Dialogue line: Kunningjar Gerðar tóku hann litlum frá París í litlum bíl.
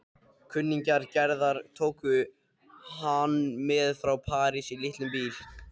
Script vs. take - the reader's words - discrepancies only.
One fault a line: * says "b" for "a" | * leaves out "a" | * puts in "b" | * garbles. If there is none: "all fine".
* says "með" for "litlum"